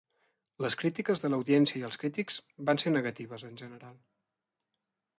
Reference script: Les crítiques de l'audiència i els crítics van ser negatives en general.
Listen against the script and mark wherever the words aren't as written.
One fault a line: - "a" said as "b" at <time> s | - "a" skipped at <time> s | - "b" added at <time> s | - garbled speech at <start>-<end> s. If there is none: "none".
none